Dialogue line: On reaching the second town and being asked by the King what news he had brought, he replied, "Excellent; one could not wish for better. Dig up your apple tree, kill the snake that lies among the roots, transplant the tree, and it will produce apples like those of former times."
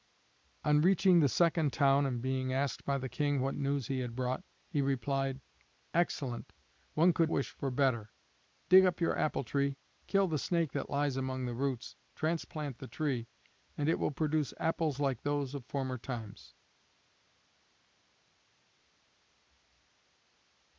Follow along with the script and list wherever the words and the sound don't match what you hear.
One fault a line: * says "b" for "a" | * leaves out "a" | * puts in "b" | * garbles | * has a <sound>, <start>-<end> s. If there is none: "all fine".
* leaves out "not"